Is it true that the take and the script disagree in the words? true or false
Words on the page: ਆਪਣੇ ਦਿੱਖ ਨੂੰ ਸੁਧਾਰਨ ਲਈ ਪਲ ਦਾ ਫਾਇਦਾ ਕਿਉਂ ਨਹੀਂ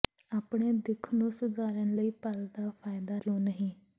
false